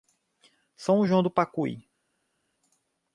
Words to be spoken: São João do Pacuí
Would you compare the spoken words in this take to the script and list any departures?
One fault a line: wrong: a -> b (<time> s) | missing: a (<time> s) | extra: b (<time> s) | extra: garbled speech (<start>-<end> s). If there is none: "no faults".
no faults